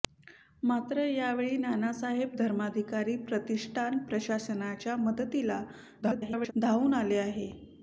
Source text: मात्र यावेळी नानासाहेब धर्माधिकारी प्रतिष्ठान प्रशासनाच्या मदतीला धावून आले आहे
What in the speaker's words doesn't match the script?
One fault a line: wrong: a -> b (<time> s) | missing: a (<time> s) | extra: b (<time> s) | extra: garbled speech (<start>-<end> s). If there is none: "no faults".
extra: garbled speech (6.0-6.5 s)